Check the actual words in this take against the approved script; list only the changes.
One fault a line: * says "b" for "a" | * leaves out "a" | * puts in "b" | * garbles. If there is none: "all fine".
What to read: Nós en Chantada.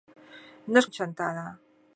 all fine